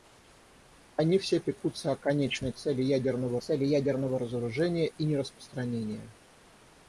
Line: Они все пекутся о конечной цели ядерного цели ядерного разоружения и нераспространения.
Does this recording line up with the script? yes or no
yes